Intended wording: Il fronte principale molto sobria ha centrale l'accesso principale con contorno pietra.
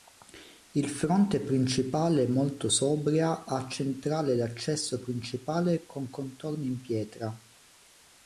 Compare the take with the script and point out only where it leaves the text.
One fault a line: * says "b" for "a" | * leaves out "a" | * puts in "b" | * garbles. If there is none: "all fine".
* puts in "in"